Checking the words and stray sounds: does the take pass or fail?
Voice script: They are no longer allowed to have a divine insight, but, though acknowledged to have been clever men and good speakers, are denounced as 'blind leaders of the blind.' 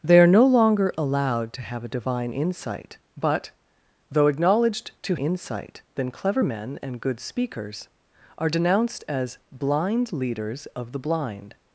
fail